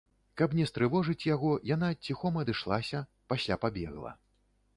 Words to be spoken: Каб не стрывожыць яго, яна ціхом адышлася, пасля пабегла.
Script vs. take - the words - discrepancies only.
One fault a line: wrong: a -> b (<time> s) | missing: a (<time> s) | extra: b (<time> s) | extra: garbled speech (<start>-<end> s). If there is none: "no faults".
no faults